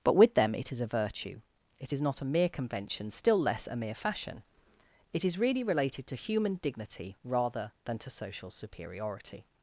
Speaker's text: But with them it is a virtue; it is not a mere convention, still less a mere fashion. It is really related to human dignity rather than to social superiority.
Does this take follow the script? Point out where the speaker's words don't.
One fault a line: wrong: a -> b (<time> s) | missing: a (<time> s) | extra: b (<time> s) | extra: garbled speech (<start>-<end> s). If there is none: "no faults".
no faults